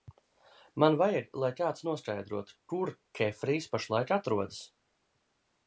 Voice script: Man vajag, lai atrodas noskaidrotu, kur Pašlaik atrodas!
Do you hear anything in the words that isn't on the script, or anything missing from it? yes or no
yes